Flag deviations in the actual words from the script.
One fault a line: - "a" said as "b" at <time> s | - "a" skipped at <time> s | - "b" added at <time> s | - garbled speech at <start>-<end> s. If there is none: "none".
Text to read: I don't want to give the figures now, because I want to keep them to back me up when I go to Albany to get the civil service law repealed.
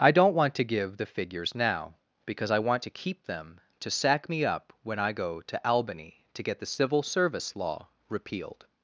- "back" said as "sack" at 3.9 s